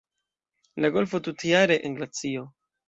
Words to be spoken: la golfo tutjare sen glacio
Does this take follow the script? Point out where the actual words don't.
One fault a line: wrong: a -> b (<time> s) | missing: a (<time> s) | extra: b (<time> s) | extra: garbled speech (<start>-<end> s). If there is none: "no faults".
no faults